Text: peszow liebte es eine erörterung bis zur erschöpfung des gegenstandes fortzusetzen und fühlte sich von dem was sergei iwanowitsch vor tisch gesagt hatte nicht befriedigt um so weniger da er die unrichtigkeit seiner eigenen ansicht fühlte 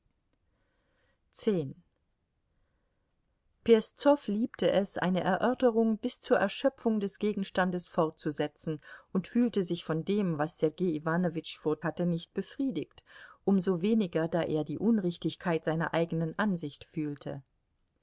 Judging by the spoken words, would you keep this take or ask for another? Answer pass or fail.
fail